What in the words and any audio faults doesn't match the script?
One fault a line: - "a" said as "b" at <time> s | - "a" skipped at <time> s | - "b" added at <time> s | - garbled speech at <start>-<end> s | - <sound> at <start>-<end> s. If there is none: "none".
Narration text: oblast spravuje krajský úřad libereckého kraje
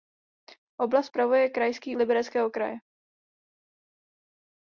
- "úřad" skipped at 2.0 s